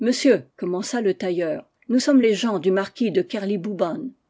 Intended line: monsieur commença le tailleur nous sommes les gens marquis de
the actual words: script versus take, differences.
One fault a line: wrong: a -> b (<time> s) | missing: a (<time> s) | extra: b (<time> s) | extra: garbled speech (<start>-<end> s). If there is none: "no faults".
extra: du (2.6 s)